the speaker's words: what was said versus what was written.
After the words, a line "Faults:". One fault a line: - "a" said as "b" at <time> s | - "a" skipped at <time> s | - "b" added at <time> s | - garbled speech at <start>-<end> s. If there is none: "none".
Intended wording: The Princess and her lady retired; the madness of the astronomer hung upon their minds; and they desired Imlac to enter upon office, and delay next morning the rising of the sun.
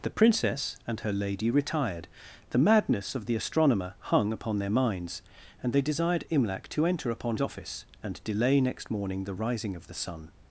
The Princess and her lady retired; the madness of the astronomer hung upon their minds; and they desired Imlac to enter upon office, and delay next morning the rising of the sun.
Faults:
none